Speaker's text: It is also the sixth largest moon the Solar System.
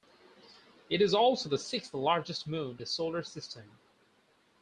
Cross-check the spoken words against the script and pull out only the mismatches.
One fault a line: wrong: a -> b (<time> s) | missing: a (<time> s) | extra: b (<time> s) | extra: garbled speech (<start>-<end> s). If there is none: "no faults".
no faults